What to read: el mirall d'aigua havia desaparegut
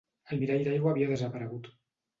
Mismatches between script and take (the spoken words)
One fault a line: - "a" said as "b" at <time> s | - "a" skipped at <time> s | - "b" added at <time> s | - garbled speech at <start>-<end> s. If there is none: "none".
none